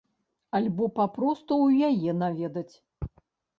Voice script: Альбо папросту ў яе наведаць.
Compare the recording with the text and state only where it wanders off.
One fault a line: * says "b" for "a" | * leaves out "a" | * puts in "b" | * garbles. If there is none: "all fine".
all fine